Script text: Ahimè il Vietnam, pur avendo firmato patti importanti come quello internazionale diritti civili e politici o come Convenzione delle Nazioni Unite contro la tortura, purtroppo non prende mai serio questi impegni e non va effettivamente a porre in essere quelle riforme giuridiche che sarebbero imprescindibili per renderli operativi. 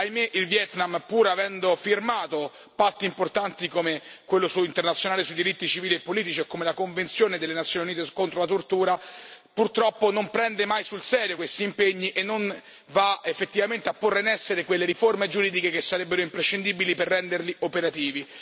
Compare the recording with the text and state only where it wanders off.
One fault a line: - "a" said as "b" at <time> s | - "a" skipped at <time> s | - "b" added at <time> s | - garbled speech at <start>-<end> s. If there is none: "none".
- "sui" added at 5.2 s
- "la" added at 6.6 s
- "sul" added at 10.8 s